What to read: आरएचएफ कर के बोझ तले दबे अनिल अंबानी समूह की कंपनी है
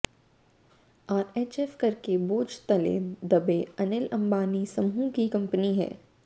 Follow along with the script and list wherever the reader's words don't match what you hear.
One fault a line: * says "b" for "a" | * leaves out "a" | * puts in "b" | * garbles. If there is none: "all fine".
all fine